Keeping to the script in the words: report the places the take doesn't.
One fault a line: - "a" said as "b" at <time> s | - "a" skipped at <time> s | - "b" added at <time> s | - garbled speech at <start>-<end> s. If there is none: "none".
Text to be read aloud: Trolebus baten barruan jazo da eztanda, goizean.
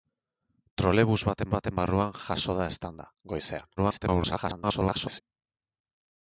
- "baten" added at 1.5 s
- garbled speech at 3.8-5.2 s